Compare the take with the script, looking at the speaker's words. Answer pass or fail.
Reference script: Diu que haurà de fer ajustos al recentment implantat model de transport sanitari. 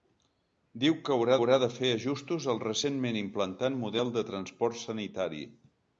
fail